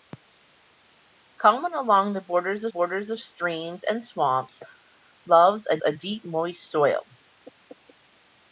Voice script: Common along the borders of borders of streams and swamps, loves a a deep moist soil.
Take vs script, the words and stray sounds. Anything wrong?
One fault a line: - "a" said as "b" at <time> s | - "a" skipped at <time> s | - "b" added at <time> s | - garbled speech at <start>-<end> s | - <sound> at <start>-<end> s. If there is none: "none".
none